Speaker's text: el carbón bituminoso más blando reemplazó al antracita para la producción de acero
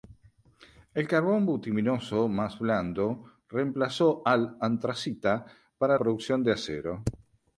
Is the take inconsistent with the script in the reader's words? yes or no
yes